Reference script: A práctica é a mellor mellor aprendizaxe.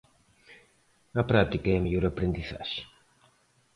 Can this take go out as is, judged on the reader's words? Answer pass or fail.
fail